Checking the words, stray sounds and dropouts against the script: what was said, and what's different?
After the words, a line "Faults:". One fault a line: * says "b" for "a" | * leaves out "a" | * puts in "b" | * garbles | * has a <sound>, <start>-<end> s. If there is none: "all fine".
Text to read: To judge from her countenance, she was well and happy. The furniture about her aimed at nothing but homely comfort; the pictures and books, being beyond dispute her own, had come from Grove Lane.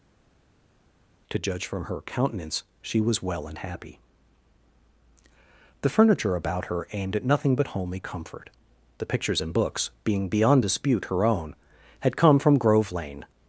To judge from her countenance, she was well and happy. The furniture about her aimed at nothing but homely comfort; the pictures and books, being beyond dispute her own, had come from Grove Lane.
Faults:
all fine